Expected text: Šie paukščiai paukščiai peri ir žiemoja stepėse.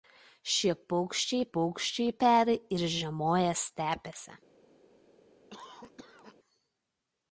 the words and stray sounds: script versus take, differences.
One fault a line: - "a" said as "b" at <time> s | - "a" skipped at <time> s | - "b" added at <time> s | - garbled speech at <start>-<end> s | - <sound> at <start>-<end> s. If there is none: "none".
- cough at 5.5-6.4 s